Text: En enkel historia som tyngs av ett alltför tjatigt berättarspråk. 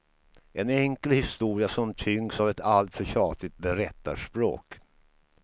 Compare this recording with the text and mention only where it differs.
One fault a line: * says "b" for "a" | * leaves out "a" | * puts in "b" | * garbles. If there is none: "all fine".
all fine